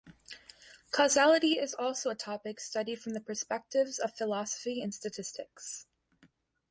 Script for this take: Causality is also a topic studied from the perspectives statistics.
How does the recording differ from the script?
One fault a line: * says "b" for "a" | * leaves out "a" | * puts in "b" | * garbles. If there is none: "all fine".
* puts in "of philosophy and"